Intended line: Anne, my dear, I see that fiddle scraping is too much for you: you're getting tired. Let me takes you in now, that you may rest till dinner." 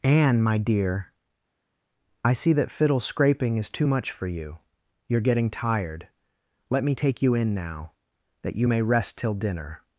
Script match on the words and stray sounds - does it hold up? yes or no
no